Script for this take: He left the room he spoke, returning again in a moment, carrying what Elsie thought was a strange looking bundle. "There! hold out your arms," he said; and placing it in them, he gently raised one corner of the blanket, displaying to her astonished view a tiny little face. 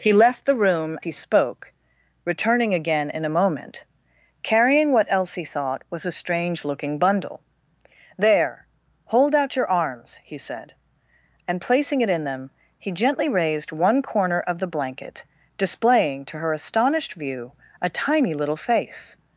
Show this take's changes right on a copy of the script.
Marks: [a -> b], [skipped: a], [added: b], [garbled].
He left the room he spoke, returning again in a moment, carrying what Elsie thought was a strange looking bundle. "There! hold out your arms," he said; and placing it in them, he gently raised one corner of the blanket, displaying to her astonished view a tiny little face.